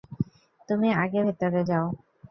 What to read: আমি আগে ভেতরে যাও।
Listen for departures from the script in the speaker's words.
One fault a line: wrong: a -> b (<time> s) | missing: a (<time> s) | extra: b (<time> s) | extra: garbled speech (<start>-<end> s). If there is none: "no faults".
wrong: আমি -> তুমি (0.7 s)